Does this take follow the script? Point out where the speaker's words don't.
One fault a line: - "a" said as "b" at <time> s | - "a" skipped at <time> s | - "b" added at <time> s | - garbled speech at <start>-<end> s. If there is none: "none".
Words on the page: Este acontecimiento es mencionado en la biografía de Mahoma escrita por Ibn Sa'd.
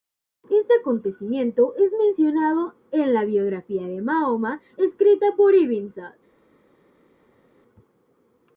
none